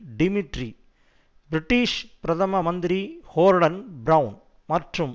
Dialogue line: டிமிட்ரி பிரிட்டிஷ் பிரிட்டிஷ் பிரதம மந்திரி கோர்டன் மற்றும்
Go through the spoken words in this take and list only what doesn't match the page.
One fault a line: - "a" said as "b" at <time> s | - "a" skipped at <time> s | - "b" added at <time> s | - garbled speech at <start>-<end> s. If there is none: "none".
- "பிரிட்டிஷ்" skipped at 2.0 s
- "பிரெளன்" added at 4.0 s